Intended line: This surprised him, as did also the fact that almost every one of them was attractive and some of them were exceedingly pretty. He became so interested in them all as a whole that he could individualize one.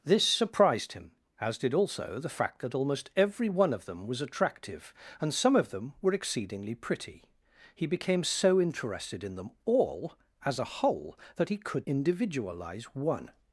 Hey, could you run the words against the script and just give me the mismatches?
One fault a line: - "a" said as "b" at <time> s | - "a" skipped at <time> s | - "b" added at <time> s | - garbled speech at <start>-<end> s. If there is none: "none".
none